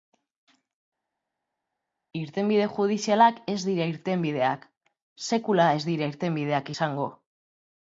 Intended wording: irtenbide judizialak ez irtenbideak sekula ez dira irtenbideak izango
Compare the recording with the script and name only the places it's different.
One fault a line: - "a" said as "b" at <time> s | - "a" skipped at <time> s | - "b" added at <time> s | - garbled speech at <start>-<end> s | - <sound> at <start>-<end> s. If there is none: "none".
- "dira" added at 3.7 s